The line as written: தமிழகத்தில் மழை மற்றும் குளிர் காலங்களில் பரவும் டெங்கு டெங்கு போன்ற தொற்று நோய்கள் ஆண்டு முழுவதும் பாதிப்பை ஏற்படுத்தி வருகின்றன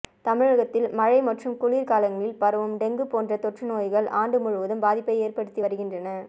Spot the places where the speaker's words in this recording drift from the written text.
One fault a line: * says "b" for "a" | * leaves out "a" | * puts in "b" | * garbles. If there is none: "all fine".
* leaves out "டெங்கு"